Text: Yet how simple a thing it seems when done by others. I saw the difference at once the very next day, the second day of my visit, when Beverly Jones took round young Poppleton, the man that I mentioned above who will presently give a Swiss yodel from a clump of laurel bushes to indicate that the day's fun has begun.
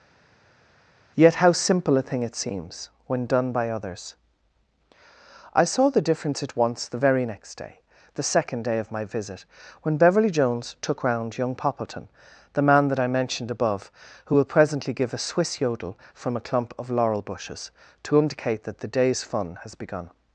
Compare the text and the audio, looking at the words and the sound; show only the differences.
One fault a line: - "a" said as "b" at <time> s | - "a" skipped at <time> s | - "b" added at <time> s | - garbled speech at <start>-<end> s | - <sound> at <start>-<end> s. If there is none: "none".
none